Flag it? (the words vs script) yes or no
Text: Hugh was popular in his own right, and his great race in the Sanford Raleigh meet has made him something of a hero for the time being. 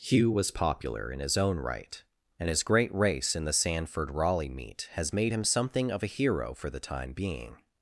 no